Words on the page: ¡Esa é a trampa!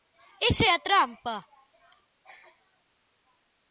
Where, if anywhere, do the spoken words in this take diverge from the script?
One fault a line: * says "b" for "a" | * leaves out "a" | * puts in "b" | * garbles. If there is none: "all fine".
all fine